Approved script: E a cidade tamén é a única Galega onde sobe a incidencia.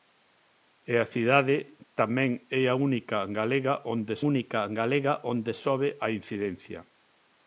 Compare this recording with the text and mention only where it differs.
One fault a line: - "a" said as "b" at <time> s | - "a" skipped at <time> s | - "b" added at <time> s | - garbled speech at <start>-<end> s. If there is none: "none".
- "única Galega onde" added at 4.3 s